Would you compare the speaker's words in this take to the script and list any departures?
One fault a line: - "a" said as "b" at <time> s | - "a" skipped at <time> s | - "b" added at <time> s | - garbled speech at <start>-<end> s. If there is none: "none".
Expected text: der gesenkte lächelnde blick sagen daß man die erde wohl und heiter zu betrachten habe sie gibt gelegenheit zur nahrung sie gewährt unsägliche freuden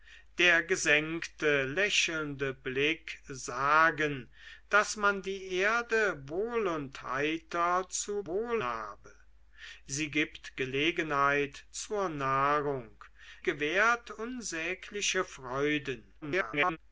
- "betrachten" said as "wohl" at 8.2 s
- "sie" skipped at 13.0 s
- garbled speech at 16.2-16.8 s